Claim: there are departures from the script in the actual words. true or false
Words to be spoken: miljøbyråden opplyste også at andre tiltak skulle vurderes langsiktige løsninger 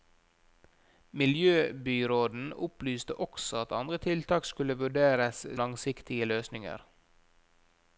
false